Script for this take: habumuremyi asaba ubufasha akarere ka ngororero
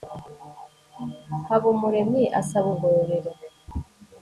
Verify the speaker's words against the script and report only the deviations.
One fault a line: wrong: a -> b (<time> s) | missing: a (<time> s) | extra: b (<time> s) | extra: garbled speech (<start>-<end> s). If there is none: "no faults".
missing: ubufasha akarere ka (2.7 s)